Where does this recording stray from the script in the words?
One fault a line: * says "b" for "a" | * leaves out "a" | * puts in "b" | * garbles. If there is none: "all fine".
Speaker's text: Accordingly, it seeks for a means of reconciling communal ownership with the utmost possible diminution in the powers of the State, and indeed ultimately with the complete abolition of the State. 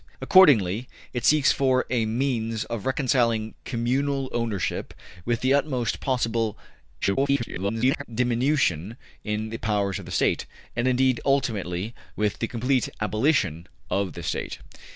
* garbles